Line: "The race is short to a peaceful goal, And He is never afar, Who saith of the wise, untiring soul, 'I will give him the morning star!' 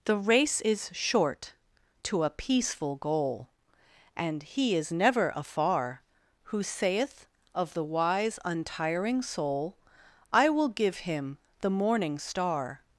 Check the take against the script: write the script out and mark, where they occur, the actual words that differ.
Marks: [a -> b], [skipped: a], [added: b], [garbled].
"The race is short to a peaceful goal, And He is never afar, Who saith of the wise, untiring soul, 'I will give him the morning star!'